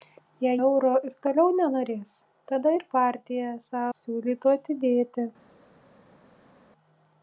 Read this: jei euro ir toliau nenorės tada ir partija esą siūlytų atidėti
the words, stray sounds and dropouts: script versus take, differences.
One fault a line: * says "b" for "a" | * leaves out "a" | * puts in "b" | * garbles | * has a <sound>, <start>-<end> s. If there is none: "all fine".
all fine